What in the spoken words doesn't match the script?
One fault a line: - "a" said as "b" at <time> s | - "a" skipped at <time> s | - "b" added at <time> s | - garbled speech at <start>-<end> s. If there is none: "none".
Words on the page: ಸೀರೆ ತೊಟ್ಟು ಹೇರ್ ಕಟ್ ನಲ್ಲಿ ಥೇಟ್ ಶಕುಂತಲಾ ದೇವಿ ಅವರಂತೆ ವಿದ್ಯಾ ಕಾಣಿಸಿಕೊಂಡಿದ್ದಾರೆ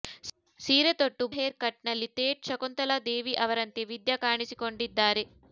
none